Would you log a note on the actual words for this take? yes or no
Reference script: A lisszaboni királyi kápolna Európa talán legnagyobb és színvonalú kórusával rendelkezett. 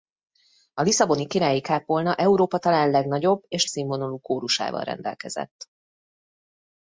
no